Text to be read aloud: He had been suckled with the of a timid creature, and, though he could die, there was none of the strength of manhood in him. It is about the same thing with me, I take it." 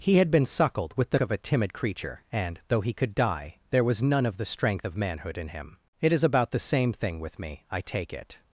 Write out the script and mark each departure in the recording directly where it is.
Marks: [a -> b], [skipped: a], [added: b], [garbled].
He had been suckled with the of a timid creature, and, though he could die, there was none of the strength of manhood in him. It is about the same thing with me, I take it."